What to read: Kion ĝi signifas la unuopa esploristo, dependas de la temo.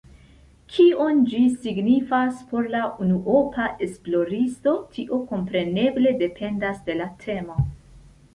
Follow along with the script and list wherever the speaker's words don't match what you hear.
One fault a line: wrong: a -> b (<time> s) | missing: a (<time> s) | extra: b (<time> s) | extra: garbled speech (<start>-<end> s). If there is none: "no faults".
extra: por (2.5 s)
extra: tio kompreneble (5.0 s)